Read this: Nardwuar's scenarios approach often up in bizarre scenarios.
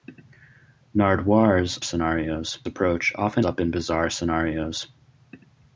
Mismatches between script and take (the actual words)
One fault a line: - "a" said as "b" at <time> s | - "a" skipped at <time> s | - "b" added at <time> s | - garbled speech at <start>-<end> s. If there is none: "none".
none